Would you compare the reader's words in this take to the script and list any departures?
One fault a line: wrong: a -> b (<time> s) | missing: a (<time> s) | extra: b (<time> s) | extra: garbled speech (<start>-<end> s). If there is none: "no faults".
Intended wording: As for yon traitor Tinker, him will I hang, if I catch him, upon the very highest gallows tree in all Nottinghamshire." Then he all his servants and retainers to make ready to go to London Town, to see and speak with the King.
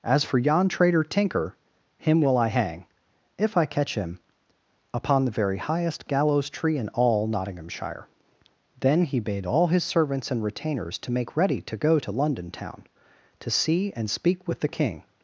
extra: bade (9.2 s)